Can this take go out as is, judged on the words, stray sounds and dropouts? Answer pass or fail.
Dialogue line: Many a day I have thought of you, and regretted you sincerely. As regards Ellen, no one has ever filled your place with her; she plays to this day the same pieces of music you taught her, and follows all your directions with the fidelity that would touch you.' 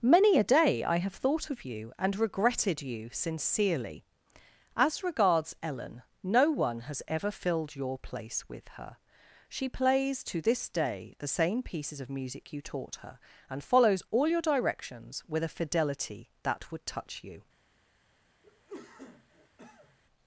fail